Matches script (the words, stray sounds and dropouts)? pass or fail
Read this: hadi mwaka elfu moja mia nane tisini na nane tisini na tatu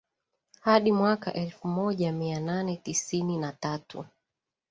fail